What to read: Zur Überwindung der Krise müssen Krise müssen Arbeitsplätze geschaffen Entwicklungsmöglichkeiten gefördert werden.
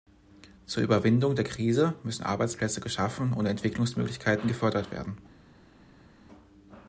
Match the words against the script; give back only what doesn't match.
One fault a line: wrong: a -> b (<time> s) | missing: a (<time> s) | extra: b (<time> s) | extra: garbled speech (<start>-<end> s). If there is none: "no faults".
missing: Krise müssen (2.2 s)
extra: und (3.3 s)